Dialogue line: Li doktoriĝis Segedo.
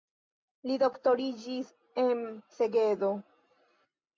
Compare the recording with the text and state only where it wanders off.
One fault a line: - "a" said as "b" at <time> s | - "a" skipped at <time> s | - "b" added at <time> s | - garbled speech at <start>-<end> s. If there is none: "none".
- "en" added at 2.0 s